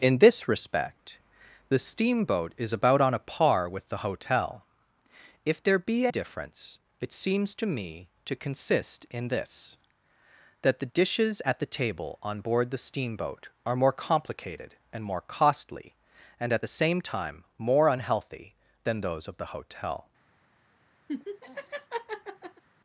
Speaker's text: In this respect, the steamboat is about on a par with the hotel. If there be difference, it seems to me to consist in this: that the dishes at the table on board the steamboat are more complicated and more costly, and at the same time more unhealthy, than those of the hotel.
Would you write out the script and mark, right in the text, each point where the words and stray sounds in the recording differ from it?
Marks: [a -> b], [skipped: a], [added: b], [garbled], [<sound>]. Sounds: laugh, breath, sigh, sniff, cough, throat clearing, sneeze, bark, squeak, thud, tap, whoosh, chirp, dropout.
In this respect, the steamboat is about on a par with the hotel. If there be difference, it seems to me to consist in this: that the dishes at the table on board the steamboat are more complicated and more costly, and at the same time more unhealthy, than those of the hotel. [laugh]